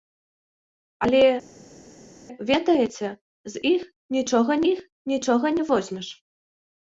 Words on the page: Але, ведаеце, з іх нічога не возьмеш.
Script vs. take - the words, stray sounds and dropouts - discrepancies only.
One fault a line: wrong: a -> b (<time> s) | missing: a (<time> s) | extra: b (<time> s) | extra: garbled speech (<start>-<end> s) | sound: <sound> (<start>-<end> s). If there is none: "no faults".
extra: іх нічога (4.7 s)